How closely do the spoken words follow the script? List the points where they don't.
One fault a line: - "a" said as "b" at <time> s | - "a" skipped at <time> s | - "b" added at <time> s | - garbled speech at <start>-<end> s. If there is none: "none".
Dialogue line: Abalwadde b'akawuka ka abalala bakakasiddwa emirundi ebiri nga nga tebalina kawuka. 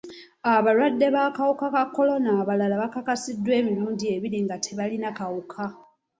- "kolona" added at 1.9 s
- "nga" skipped at 4.6 s